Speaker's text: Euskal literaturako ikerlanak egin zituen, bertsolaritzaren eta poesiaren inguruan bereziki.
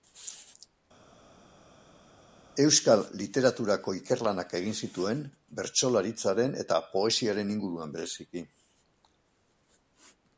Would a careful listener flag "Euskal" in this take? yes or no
no